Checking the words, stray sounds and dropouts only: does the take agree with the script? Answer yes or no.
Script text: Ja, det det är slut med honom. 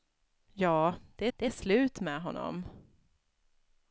yes